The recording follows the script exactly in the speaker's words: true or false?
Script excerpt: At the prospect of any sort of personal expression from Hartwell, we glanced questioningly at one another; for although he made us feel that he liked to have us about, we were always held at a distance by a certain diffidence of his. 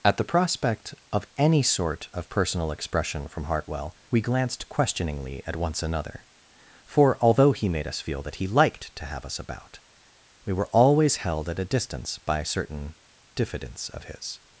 false